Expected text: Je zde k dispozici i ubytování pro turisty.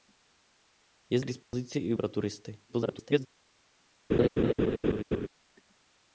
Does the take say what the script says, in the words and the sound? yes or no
no